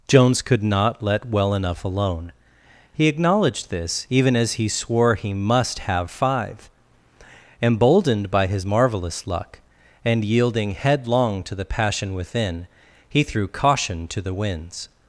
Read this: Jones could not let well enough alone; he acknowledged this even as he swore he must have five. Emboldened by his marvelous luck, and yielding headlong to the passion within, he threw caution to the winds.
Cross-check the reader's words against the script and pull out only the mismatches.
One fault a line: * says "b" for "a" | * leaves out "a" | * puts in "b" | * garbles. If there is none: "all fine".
all fine